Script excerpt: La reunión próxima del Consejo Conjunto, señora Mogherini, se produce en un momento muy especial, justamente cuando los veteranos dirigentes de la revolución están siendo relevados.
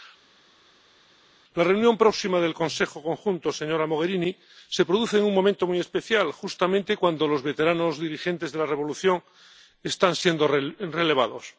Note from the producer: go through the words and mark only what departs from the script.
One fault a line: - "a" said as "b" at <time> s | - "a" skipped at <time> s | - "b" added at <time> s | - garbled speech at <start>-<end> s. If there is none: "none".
none